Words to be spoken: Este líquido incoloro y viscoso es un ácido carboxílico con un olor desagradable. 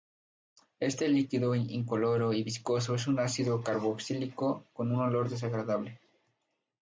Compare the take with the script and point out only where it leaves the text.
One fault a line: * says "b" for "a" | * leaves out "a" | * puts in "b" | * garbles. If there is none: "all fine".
all fine